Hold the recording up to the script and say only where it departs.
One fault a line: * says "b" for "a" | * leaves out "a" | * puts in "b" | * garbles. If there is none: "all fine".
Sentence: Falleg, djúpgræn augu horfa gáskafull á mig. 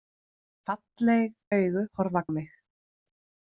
* leaves out "djúpgræn"
* leaves out "gáskafull"